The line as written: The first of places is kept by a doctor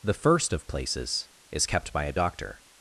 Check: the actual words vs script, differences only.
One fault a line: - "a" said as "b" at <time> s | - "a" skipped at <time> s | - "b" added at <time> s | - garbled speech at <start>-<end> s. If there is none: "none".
none